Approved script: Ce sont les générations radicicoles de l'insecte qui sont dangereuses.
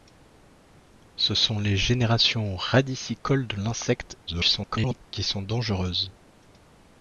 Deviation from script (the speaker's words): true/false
true